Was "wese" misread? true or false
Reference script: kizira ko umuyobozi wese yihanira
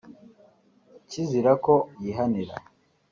true